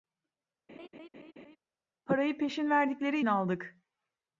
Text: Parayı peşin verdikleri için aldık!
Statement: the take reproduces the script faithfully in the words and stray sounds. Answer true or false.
false